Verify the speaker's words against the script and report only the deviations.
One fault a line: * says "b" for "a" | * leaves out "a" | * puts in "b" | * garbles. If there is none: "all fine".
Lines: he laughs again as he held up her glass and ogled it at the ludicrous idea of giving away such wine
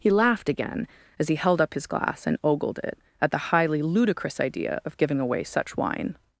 * says "laughed" for "laughs"
* says "his" for "her"
* puts in "highly"